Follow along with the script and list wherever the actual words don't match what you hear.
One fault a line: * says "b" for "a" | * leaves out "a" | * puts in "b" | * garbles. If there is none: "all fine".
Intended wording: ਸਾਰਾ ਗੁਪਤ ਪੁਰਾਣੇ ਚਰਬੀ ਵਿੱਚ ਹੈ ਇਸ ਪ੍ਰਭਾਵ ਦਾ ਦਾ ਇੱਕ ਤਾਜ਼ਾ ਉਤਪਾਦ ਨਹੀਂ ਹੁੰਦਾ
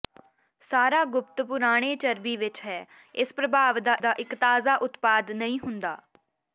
all fine